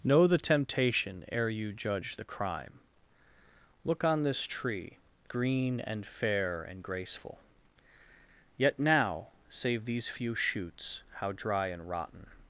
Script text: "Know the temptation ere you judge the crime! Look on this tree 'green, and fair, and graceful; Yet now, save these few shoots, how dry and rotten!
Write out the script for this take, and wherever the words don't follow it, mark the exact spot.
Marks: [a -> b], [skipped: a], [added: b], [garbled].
"Know the temptation ere you judge the crime! Look on this tree 'green, and fair, and graceful; Yet now, save these few shoots, how dry and rotten!